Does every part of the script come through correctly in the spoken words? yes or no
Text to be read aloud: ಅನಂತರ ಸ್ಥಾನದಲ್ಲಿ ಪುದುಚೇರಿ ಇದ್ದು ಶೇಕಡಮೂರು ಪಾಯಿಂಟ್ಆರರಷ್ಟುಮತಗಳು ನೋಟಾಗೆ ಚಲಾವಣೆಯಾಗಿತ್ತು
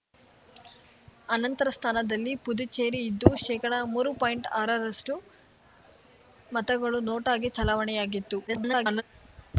no